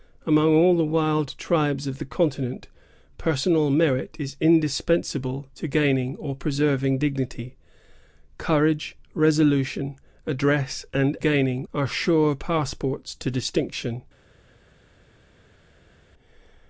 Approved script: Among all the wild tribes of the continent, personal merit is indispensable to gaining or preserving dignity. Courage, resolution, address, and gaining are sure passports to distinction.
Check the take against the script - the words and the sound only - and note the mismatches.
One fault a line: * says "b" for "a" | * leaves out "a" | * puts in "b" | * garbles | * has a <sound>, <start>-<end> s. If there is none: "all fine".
all fine